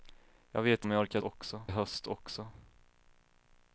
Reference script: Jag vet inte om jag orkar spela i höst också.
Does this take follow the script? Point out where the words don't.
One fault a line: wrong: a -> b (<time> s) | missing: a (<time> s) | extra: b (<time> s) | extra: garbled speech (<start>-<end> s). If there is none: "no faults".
missing: inte (0.8 s)
wrong: spela -> också (1.2 s)